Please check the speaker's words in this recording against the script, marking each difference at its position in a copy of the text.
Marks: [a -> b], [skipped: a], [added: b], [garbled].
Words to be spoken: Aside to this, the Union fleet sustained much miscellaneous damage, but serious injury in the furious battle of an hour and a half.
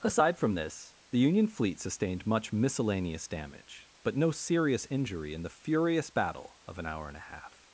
Aside [to -> from] this, the Union fleet sustained much miscellaneous damage, but [added: no] serious injury in the furious battle of an hour and a half.